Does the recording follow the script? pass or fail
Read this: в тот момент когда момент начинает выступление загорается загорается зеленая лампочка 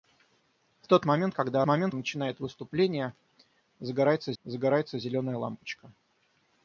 pass